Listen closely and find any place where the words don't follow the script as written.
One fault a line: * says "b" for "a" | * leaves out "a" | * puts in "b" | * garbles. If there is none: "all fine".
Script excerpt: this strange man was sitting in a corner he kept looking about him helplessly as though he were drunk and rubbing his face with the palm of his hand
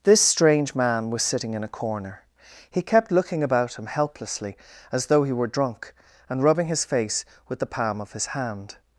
all fine